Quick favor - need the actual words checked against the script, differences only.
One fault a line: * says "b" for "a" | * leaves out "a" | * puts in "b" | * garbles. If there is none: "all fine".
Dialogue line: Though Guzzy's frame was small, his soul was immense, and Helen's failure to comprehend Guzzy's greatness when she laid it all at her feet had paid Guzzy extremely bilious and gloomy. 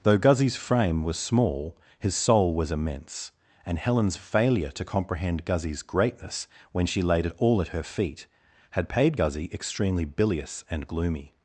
all fine